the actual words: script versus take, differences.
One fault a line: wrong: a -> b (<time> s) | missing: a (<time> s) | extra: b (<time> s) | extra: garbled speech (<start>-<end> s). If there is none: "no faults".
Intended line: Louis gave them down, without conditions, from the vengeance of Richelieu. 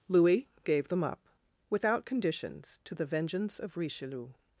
wrong: down -> up (1.0 s)
wrong: from -> to (2.9 s)